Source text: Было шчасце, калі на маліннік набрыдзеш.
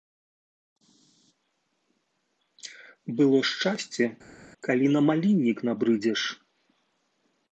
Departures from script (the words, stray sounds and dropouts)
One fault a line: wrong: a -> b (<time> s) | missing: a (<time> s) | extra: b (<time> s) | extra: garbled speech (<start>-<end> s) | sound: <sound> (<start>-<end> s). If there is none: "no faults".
no faults